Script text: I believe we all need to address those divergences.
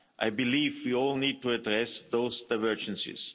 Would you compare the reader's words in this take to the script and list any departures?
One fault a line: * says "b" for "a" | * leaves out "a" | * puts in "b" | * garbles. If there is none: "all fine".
all fine